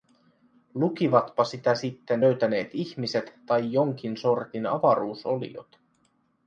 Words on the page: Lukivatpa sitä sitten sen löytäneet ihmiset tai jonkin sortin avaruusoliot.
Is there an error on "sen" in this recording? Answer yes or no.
yes